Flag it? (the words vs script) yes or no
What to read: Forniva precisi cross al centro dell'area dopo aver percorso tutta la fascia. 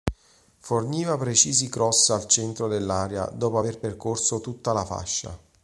no